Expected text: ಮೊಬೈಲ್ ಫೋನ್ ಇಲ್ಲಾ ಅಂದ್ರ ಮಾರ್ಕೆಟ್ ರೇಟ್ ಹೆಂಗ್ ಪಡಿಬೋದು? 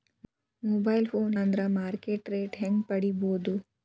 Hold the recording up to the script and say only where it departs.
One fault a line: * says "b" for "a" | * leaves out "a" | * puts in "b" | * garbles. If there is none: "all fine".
* leaves out "ಇಲ್ಲಾ"